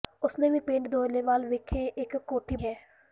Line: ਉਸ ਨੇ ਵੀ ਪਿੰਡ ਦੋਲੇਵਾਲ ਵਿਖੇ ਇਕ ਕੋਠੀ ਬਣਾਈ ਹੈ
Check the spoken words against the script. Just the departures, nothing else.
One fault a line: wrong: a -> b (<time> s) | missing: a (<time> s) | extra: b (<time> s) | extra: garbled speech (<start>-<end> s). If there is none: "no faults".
missing: ਬਣਾਈ (2.5 s)